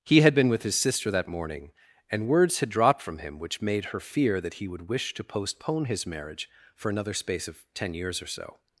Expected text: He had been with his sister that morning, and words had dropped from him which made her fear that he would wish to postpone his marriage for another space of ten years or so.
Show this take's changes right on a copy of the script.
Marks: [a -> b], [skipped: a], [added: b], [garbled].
He had been with his sister that morning, and words had dropped from him which made her fear that he would wish to postpone his marriage for another space of ten years or so.